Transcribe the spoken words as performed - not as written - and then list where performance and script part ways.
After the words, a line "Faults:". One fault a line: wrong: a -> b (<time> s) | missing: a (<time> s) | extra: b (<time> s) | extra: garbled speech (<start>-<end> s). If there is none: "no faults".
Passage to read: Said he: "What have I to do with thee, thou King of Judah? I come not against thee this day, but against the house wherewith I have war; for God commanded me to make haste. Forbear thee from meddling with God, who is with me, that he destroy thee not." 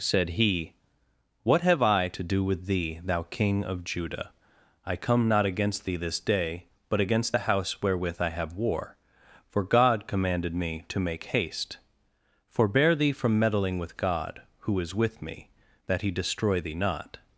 Said he: "What have I to do with thee, thou King of Judah? I come not against thee this day, but against the house wherewith I have war; for God commanded me to make haste. Forbear thee from meddling with God, who is with me, that he destroy thee not."
Faults:
no faults